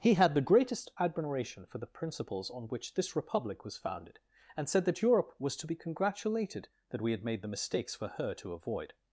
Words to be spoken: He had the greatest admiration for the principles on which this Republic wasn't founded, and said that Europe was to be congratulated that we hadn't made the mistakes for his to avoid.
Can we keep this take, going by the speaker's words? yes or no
no